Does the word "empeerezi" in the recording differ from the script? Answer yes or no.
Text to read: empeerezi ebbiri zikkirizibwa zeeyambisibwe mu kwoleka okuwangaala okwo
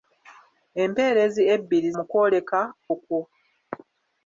no